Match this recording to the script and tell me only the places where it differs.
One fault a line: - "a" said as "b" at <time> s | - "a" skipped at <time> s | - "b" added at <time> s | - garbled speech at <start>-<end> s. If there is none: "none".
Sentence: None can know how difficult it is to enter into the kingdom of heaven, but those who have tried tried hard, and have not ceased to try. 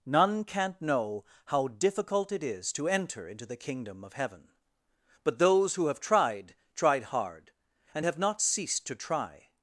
- "can" said as "can't" at 0.4 s